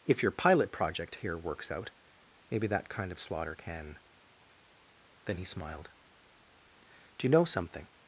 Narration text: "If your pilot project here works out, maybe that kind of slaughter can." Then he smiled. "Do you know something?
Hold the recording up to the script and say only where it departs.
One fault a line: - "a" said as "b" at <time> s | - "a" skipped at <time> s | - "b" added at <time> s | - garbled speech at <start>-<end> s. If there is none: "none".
none